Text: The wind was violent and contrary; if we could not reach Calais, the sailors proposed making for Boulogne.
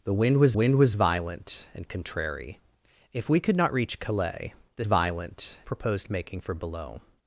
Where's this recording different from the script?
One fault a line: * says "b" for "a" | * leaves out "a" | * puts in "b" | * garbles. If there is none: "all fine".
* puts in "wind was"
* says "violent" for "sailors"